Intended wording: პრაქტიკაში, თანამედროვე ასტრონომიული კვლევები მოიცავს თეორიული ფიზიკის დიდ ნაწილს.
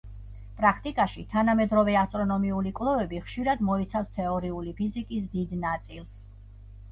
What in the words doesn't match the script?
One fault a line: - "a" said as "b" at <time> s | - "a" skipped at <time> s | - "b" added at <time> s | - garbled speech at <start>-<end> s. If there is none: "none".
- "ხშირად" added at 3.3 s